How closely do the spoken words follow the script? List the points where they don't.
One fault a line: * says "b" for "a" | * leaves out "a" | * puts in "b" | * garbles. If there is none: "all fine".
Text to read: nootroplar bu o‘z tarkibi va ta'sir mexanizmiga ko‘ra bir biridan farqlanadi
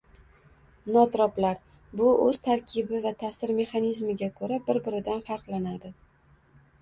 all fine